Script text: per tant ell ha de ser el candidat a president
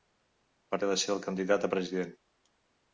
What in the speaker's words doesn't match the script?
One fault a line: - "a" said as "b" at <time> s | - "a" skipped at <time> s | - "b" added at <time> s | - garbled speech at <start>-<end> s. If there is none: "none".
- "tant ell" skipped at 0.8 s